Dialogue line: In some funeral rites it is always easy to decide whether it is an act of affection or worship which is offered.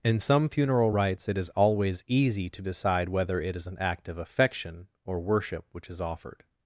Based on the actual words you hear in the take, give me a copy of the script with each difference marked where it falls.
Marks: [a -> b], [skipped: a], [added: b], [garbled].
In some funeral rites it is always easy to decide whether it is an act of affection or worship which is offered.